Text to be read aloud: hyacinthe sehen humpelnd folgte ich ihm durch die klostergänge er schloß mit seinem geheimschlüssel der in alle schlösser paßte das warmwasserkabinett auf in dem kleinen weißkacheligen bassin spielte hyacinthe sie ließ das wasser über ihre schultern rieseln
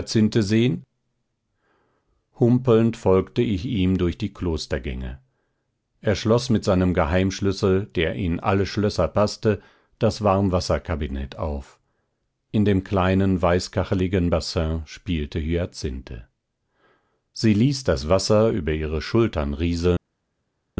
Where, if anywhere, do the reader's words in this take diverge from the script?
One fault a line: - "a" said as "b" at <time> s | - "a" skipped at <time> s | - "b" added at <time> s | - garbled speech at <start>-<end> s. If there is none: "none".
none